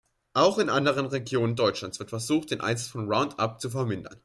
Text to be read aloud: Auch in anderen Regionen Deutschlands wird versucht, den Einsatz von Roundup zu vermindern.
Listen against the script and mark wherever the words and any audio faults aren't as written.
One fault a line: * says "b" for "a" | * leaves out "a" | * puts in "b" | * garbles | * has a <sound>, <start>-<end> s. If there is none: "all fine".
all fine